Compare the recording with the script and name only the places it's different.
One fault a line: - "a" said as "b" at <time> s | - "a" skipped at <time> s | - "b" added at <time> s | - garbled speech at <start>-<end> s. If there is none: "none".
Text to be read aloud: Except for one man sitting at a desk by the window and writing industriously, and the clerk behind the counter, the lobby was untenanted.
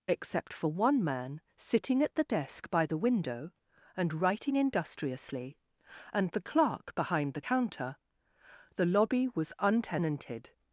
- "a" said as "the" at 2.1 s